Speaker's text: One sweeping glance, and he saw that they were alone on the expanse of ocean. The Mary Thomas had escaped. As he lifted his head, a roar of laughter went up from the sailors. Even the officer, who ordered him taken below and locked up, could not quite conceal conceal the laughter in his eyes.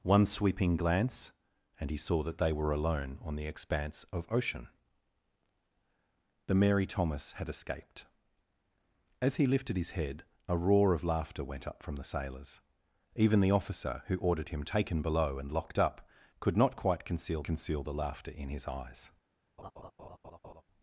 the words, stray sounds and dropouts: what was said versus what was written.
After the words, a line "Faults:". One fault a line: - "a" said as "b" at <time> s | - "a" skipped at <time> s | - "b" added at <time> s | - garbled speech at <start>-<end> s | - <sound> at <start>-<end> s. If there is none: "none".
One sweeping glance, and he saw that they were alone on the expanse of ocean. The Mary Thomas had escaped. As he lifted his head, a roar of laughter went up from the sailors. Even the officer, who ordered him taken below and locked up, could not quite conceal conceal the laughter in his eyes.
Faults:
- laugh at 19.6-20.6 s